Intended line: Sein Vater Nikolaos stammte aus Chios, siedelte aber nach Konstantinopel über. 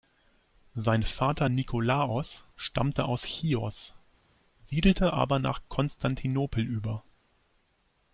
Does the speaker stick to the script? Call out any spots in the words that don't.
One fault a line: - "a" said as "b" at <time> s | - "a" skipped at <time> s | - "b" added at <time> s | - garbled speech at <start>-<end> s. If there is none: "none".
none